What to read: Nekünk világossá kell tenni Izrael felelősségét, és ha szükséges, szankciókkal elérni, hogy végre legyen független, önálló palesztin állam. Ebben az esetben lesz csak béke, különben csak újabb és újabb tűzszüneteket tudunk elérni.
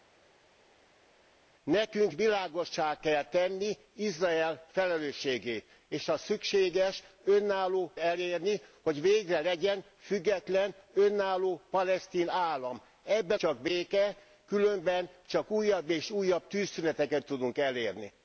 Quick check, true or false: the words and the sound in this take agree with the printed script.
false